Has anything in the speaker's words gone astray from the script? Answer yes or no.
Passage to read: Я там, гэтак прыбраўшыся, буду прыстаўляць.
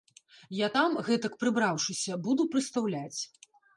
no